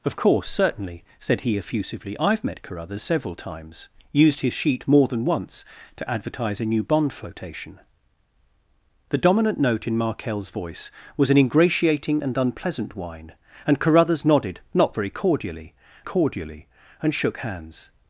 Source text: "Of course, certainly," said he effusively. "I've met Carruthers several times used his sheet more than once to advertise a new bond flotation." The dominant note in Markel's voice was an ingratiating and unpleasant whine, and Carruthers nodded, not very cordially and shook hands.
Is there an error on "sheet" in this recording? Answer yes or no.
no